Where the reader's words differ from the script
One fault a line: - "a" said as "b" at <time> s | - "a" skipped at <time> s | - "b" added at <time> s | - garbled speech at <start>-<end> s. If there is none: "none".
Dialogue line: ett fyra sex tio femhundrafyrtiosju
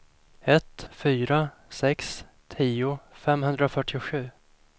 none